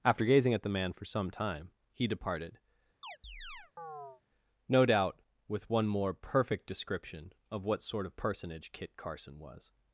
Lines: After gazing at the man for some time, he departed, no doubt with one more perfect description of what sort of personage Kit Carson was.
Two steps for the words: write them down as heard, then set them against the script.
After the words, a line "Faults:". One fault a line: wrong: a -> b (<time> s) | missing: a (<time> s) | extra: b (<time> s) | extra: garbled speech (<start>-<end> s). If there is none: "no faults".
After gazing at the man for some time, he departed, no doubt with one more perfect description of what sort of personage Kit Carson was.
Faults:
no faults